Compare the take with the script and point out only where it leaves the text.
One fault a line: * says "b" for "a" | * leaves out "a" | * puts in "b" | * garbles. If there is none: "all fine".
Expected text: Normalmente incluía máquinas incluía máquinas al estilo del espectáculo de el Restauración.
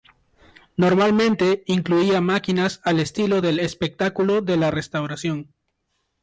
* leaves out "incluía máquinas"
* says "la" for "el"